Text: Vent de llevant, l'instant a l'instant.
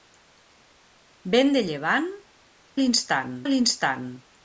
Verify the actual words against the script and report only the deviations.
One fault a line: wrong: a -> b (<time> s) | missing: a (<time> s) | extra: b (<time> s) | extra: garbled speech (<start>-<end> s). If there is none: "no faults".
no faults